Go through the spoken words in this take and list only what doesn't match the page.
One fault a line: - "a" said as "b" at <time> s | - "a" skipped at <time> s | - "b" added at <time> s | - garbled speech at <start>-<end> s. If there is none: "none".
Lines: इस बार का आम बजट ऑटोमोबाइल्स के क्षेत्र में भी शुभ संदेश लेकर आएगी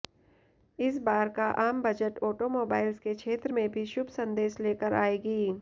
none